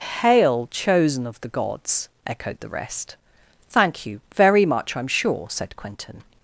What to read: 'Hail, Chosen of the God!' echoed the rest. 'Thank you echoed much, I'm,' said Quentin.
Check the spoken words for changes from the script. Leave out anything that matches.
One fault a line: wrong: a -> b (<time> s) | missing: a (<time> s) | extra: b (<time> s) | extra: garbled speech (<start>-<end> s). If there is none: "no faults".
wrong: God -> Gods (1.5 s)
wrong: echoed -> very (4.3 s)
extra: sure (5.1 s)